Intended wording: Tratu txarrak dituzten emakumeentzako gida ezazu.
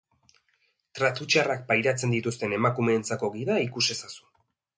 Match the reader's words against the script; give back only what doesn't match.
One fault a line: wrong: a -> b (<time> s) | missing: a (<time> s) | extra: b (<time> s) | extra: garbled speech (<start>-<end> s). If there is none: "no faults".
extra: pairatzen (1.7 s)
extra: ikus (3.7 s)